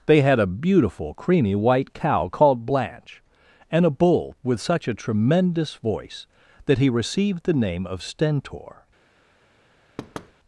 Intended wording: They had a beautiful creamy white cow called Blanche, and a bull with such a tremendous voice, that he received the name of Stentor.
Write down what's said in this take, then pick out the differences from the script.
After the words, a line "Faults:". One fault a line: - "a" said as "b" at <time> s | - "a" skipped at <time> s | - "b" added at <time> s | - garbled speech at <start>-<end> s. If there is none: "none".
They had a beautiful creamy white cow called Blanche, and a bull with such a tremendous voice, that he received the name of Stentor.
Faults:
none